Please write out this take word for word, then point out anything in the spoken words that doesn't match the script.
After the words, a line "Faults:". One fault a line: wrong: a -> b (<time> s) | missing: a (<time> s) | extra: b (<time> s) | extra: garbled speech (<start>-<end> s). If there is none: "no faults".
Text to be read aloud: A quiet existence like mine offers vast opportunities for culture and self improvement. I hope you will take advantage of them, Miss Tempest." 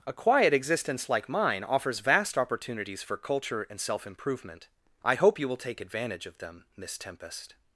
A quiet existence like mine offers vast opportunities for culture and self improvement. I hope you will take advantage of them, Miss Tempest."
Faults:
no faults